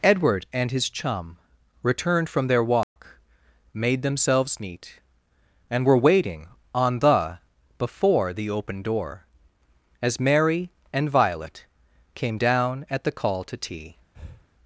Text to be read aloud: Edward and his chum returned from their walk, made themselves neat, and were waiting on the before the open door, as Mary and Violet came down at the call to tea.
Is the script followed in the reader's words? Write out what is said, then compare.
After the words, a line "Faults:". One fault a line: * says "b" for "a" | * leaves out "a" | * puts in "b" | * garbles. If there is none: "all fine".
Edward and his chum returned from their walk, made themselves neat, and were waiting on the before the open door, as Mary and Violet came down at the call to tea.
Faults:
all fine